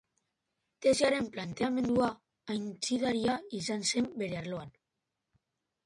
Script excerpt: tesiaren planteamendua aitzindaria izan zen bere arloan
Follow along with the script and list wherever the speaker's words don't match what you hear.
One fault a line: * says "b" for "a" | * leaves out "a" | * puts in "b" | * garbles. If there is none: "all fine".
all fine